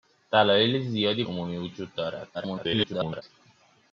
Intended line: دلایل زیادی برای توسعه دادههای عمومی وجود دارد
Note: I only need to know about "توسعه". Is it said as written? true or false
false